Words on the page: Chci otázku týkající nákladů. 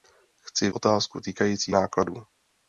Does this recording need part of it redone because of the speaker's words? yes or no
no